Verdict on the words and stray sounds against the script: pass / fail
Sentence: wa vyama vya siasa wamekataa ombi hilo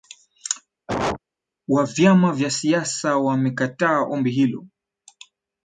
fail